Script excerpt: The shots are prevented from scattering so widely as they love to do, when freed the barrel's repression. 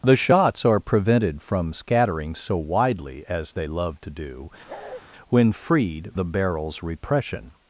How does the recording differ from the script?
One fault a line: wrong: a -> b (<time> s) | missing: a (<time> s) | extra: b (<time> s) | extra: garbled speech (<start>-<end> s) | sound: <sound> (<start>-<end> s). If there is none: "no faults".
sound: bark (4.7-5.0 s)